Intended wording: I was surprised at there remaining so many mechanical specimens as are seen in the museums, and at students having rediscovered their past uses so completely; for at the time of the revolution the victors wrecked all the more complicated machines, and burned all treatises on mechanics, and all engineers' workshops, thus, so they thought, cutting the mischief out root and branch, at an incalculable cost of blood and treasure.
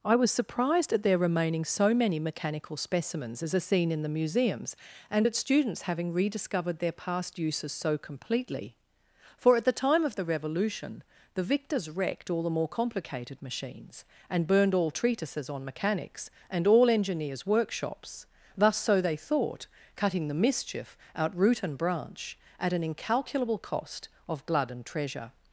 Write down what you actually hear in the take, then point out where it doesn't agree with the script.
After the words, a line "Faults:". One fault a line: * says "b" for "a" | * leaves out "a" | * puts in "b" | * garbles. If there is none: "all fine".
I was surprised at there remaining so many mechanical specimens as are seen in the museums, and at students having rediscovered their past uses so completely; for at the time of the revolution the victors wrecked all the more complicated machines, and burned all treatises on mechanics, and all engineers' workshops, thus, so they thought, cutting the mischief out root and branch, at an incalculable cost of blood and treasure.
Faults:
all fine